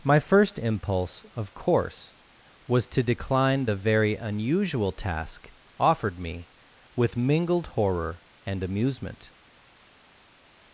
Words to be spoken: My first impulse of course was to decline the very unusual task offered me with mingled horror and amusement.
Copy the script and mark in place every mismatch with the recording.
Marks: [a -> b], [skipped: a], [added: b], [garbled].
My first impulse of course was to decline the very unusual task offered me with mingled horror and amusement.